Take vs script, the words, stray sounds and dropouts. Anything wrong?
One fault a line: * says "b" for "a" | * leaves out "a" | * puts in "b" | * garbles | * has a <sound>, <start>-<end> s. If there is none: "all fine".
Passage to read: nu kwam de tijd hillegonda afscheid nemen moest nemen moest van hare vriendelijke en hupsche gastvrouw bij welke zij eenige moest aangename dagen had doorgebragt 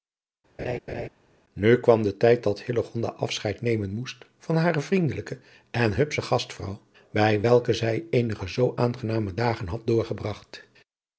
* has a laugh, 0.6-1.1 s
* puts in "dat"
* leaves out "nemen moest"
* says "zoo" for "moest"